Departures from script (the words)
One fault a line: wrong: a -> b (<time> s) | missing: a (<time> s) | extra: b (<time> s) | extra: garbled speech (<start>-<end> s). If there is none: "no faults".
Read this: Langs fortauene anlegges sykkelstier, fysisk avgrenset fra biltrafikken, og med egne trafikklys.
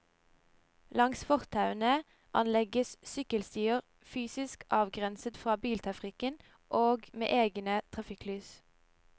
no faults